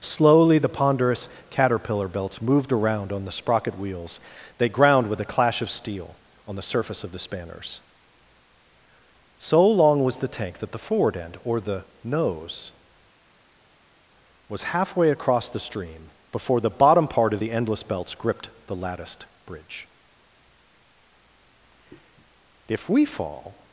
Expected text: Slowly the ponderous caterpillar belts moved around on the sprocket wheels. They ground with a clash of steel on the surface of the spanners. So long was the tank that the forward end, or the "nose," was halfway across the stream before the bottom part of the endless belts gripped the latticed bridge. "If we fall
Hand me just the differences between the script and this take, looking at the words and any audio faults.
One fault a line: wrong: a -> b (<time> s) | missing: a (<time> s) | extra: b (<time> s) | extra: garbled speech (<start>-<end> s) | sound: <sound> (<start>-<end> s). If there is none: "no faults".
no faults